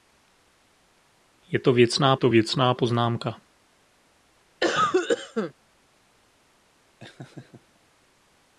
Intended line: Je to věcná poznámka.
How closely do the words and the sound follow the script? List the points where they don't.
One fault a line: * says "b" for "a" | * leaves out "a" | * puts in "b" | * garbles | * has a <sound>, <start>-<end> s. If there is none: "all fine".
* puts in "to věcná"
* has a cough, 4.6-5.5 s
* has a laugh, 7.0-7.8 s